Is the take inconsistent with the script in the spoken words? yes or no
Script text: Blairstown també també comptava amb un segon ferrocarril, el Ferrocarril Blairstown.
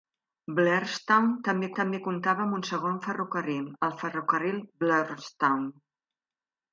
no